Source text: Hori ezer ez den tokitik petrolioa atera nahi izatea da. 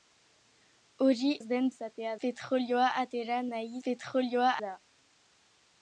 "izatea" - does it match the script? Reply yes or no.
no